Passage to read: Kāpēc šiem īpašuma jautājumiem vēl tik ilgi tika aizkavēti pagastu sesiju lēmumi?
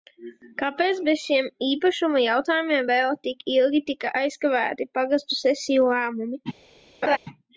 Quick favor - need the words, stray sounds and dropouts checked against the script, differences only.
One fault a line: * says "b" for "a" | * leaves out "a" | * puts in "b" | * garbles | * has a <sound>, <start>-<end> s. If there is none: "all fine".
* puts in "bez"
* has a laugh, 7.0-7.2 s